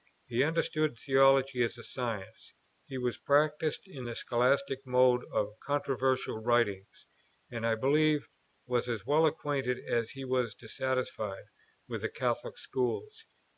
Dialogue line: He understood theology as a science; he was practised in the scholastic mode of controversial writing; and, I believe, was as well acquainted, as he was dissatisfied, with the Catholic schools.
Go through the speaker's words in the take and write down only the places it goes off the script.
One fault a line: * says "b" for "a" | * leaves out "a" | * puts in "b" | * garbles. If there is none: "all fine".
all fine